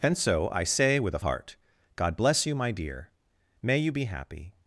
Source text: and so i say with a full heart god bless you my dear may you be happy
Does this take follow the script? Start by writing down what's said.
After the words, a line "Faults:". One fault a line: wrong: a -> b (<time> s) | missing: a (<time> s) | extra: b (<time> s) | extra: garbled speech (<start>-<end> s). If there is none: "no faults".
and so i say with a heart god bless you my dear may you be happy
Faults:
missing: full (1.2 s)